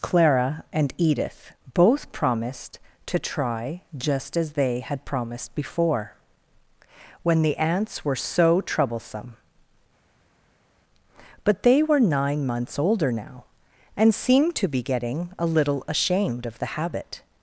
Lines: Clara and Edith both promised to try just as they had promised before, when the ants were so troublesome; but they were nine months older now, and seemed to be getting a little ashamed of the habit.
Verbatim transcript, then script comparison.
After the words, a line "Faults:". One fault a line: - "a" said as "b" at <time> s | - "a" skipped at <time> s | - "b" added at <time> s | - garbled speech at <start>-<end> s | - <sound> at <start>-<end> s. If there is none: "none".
Clara and Edith both promised to try just as they had promised before, when the ants were so troublesome; but they were nine months older now, and seemed to be getting a little ashamed of the habit.
Faults:
none